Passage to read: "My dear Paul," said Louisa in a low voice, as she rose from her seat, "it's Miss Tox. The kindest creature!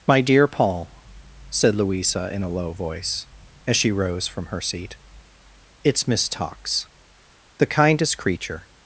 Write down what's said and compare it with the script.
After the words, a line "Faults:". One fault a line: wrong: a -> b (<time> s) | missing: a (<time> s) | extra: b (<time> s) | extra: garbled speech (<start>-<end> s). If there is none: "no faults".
"My dear Paul," said Louisa in a low voice, as she rose from her seat, "it's Miss Tox. The kindest creature!
Faults:
no faults